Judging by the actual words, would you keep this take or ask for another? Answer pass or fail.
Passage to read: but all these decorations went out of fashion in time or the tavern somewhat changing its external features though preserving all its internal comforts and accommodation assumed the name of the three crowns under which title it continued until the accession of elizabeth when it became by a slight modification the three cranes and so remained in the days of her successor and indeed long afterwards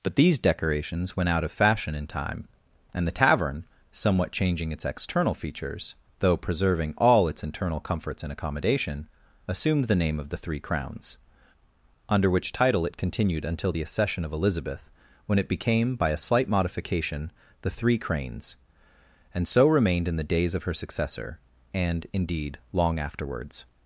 fail